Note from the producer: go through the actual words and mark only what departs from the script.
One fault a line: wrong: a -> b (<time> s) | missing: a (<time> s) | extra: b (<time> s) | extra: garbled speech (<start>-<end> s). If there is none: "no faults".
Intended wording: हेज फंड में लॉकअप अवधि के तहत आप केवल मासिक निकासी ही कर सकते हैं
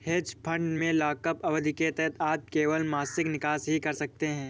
no faults